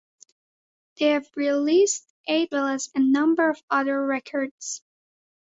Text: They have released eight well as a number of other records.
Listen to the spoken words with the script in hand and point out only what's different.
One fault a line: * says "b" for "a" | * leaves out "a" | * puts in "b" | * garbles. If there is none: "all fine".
all fine